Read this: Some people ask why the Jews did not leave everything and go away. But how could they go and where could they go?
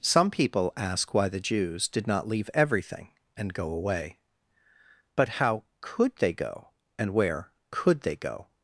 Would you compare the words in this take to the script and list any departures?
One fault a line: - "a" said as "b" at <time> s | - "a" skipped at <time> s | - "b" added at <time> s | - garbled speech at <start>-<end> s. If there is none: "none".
none